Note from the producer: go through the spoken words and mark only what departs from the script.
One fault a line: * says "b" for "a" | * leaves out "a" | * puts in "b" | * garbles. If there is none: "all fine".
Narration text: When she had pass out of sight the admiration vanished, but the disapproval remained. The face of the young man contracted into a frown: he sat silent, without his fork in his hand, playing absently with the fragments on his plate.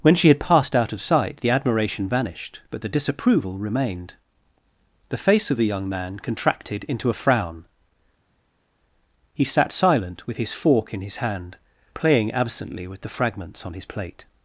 * says "passed" for "pass"
* says "with" for "without"